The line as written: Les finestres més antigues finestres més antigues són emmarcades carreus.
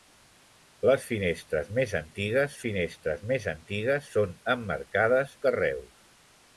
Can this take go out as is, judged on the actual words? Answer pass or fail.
pass